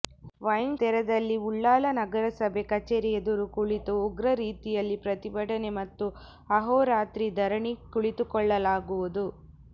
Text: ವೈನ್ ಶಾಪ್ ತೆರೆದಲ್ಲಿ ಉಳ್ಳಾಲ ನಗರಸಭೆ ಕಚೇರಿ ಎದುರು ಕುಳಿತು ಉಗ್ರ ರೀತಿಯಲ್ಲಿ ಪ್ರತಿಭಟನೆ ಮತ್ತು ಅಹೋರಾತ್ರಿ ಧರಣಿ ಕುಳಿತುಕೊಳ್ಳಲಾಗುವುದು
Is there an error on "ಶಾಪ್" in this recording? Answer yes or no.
yes